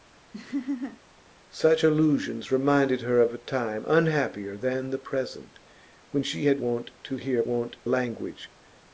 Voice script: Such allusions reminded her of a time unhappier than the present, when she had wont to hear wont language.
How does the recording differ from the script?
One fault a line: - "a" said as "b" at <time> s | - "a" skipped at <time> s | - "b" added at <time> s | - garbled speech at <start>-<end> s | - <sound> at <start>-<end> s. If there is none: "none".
- laugh at 0.3-1.0 s